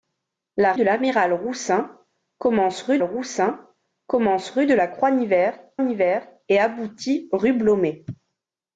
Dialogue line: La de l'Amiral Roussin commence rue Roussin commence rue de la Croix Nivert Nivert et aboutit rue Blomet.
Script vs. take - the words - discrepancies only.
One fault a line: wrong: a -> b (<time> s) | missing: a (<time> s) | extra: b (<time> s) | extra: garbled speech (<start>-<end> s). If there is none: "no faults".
no faults